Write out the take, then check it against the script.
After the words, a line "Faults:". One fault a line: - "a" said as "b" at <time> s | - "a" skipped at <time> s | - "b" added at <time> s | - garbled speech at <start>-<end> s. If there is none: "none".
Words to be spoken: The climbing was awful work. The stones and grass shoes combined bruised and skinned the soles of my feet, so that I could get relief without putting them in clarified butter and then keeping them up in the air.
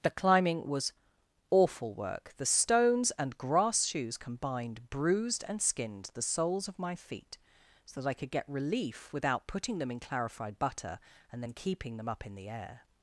The climbing was awful work. The stones and grass shoes combined bruised and skinned the soles of my feet, so that I could get relief without putting them in clarified butter and then keeping them up in the air.
Faults:
none